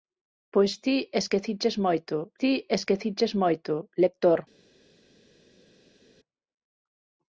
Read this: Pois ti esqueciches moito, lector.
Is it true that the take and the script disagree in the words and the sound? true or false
true